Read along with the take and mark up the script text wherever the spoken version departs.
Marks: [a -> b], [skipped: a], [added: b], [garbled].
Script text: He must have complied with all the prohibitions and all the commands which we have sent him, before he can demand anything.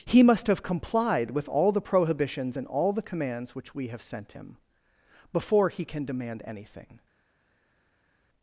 He must have complied with all the prohibitions and all the commands which we have sent him, before he can demand anything.